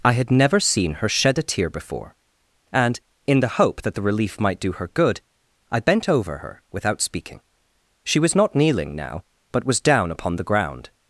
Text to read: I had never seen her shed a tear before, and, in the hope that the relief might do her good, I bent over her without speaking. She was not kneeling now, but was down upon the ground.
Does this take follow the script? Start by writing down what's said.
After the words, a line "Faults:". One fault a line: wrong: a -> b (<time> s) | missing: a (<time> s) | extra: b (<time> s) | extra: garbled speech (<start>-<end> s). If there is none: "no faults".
I had never seen her shed a tear before, and, in the hope that the relief might do her good, I bent over her without speaking. She was not kneeling now, but was down upon the ground.
Faults:
no faults